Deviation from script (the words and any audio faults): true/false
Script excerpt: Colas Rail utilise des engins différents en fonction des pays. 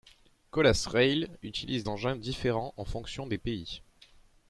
true